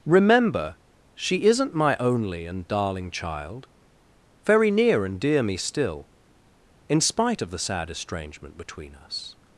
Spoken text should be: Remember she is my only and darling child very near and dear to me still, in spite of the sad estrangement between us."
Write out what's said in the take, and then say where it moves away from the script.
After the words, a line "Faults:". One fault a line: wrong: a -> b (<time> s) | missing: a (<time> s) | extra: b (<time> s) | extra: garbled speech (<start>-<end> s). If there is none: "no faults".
Remember she isn't my only and darling child very near and dear me still, in spite of the sad estrangement between us."
Faults:
wrong: is -> isn't (1.4 s)
missing: to (5.4 s)